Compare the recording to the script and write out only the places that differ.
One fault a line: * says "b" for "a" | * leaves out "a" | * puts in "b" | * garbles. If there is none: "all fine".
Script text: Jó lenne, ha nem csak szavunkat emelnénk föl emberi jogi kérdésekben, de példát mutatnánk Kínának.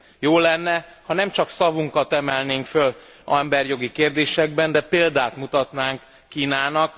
all fine